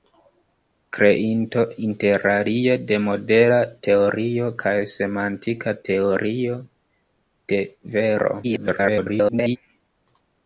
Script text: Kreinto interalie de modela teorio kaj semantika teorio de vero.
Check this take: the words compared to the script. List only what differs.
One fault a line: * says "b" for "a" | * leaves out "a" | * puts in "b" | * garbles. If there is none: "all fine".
* garbles